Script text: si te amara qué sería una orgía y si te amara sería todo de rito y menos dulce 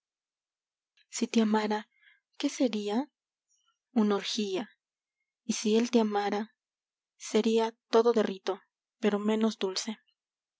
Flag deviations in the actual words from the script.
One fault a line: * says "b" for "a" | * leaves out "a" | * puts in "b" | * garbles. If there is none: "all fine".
* puts in "él"
* says "pero" for "y"